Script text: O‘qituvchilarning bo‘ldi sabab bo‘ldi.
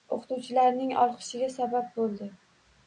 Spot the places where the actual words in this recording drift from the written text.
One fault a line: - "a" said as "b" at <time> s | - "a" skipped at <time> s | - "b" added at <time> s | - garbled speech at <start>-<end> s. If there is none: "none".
- "bo‘ldi" said as "olqishiga" at 1.0 s